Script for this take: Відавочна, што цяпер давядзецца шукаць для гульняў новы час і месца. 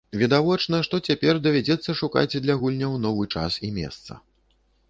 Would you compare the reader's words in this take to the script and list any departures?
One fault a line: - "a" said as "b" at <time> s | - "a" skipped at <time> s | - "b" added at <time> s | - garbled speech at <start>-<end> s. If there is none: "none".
none